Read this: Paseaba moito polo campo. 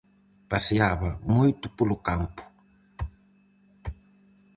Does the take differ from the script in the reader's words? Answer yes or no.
no